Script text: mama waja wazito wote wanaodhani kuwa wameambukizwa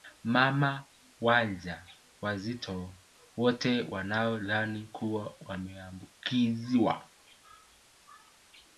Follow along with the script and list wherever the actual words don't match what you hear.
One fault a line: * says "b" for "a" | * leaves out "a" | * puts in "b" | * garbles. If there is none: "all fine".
all fine